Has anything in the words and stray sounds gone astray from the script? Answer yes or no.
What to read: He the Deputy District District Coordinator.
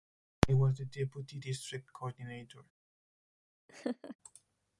yes